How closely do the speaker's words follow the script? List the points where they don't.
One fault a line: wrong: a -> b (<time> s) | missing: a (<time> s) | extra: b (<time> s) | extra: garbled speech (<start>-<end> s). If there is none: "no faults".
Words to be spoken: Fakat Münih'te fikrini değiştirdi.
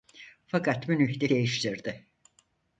missing: fikrini (1.3 s)